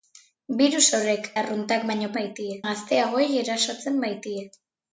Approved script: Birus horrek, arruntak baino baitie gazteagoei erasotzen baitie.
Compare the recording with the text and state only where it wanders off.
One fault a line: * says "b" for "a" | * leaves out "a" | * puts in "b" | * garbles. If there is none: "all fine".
all fine